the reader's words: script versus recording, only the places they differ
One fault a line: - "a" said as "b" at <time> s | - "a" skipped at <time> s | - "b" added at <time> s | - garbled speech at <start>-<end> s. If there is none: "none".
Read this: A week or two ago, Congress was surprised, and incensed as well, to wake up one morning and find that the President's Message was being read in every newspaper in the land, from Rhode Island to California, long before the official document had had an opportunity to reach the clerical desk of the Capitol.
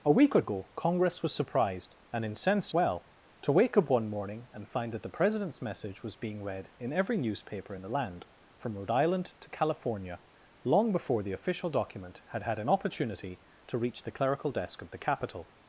- "two" skipped at 0.4 s
- "as" skipped at 2.7 s